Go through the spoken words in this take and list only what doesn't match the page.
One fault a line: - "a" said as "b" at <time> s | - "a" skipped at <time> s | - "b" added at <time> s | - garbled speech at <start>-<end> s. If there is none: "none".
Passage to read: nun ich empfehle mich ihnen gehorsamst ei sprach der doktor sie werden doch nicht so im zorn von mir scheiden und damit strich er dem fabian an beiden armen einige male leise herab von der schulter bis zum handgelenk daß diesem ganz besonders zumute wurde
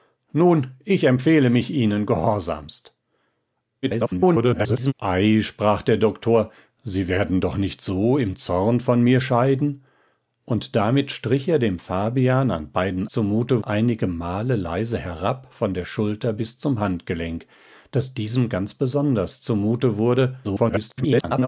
- garbled speech at 3.8-4.9 s
- "armen" said as "zumute" at 13.1 s
- garbled speech at 20.4-21.5 s